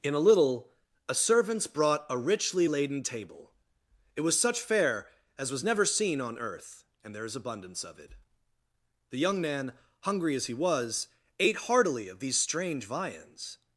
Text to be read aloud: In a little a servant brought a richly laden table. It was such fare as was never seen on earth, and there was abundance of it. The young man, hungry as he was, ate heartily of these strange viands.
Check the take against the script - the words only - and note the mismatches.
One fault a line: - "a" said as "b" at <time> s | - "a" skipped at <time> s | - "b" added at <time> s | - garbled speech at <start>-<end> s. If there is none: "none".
- "servant" said as "servants" at 1.1 s
- "was" said as "is" at 7.2 s